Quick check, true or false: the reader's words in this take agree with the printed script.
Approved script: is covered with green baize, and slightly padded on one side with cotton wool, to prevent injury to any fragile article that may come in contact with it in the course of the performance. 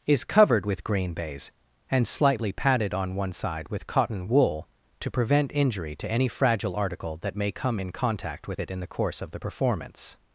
true